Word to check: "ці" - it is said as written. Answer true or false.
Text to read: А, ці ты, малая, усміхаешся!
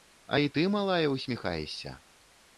false